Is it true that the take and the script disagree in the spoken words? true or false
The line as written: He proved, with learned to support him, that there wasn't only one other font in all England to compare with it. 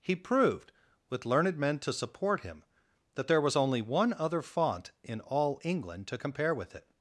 true